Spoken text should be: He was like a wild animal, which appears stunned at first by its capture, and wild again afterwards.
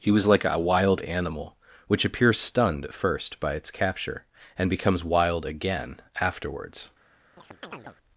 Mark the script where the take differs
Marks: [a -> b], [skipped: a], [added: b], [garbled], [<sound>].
He was like a wild animal, which appears stunned at first by its capture, and [added: becomes] wild again afterwards. [chirp]